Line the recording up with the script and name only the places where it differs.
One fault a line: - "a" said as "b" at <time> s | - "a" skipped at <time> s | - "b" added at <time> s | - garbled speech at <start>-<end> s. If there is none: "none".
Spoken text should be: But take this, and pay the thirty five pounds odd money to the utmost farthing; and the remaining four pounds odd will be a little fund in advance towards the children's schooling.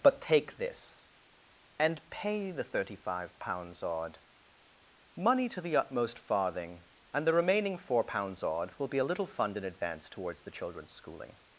none